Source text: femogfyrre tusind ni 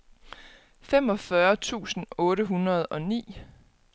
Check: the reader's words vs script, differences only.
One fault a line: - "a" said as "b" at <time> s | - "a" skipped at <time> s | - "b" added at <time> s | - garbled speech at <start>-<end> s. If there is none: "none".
- "otte hundrede og" added at 2.2 s